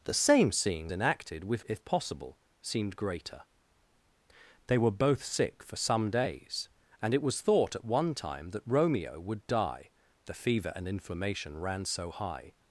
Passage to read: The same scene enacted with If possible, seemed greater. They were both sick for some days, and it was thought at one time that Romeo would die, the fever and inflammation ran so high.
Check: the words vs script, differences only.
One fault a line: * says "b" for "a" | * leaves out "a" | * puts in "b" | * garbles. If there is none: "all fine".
all fine